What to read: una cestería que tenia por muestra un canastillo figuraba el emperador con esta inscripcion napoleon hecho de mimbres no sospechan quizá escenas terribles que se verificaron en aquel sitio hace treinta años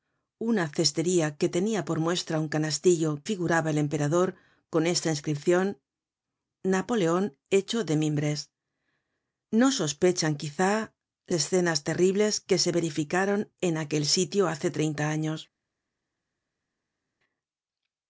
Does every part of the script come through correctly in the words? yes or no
yes